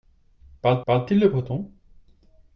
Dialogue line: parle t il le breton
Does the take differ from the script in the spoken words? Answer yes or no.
yes